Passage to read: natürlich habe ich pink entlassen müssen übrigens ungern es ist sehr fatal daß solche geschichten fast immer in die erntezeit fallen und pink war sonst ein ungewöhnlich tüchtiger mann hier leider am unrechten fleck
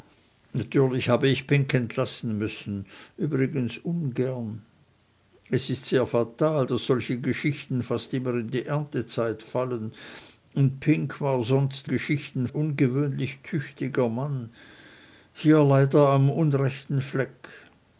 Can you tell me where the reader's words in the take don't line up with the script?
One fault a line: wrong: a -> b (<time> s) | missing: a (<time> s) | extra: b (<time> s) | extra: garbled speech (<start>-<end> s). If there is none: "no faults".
wrong: ein -> geschichten (11.8 s)